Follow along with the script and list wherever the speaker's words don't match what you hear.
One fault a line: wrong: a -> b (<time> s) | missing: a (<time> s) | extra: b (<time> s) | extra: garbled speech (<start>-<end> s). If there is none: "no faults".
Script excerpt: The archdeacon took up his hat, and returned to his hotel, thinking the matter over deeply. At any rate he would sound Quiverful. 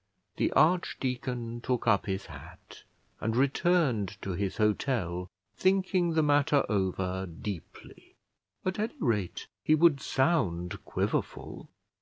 no faults